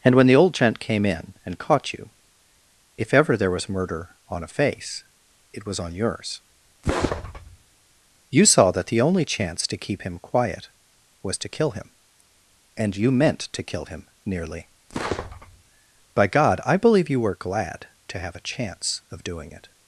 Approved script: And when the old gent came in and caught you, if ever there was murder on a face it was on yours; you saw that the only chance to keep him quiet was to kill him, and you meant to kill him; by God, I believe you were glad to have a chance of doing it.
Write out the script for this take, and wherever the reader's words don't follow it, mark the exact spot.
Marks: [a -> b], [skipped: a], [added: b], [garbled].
And when the old gent came in and caught you, if ever there was murder on a face it was on yours; you saw that the only chance to keep him quiet was to kill him, and you meant to kill him; [added: nearly] by God, I believe you were glad to have a chance of doing it.